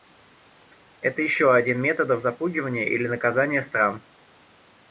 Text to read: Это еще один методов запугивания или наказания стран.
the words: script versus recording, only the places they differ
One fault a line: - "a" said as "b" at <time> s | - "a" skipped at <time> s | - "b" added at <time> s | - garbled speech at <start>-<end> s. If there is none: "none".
none